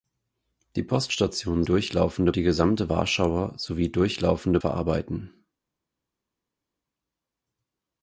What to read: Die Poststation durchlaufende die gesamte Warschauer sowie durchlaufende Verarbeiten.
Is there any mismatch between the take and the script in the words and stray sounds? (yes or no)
no